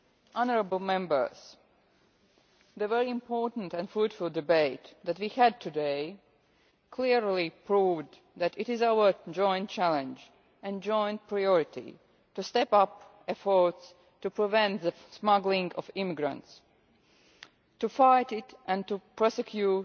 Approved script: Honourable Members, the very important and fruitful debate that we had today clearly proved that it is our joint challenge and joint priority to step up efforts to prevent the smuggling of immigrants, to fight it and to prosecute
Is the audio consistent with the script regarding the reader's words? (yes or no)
yes